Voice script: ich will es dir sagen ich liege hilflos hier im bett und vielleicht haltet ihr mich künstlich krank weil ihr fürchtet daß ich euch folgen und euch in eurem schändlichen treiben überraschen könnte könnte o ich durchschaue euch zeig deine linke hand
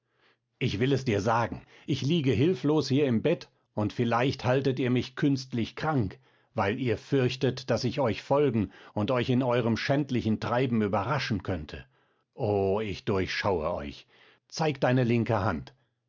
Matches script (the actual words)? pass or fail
fail